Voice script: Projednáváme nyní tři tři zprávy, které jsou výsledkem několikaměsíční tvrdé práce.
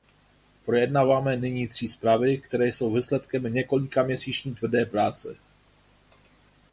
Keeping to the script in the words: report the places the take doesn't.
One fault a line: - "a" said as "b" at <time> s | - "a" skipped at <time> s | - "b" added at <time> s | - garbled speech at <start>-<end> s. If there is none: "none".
- "tři" skipped at 1.9 s